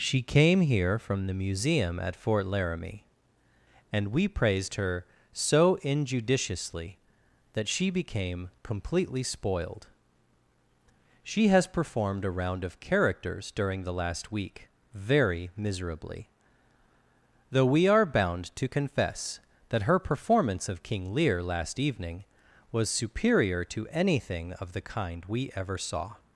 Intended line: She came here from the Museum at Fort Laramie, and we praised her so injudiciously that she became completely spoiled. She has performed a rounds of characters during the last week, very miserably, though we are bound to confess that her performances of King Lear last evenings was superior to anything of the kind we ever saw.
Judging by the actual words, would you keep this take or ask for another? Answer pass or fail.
fail